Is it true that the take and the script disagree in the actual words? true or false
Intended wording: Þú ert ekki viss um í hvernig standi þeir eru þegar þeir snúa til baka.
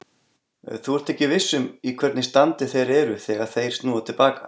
false